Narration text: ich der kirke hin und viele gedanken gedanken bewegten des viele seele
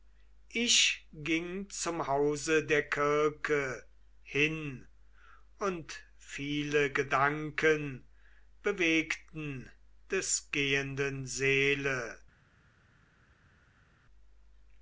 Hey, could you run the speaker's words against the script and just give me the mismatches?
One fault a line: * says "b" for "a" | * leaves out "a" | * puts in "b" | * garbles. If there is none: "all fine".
* puts in "ging zum hause"
* leaves out "gedanken"
* says "gehenden" for "viele"